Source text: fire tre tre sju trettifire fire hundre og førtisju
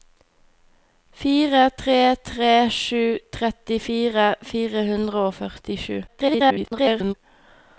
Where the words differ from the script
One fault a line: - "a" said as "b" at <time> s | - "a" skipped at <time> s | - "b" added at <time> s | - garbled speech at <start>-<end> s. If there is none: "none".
- garbled speech at 6.1-7.1 s